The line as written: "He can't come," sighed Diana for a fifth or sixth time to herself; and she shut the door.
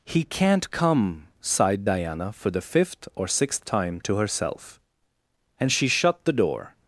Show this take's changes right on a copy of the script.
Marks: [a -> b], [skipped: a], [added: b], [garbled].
"He can't come," sighed Diana for [a -> the] fifth or sixth time to herself; and she shut the door.